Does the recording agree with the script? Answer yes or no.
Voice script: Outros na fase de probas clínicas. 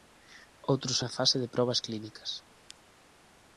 yes